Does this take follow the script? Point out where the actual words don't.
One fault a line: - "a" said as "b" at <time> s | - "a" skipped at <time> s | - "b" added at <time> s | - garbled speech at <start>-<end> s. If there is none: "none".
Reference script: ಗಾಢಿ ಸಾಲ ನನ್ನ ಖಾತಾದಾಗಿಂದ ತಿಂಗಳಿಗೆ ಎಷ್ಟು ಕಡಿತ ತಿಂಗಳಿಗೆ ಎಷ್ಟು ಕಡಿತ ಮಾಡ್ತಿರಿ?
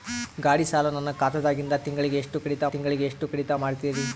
none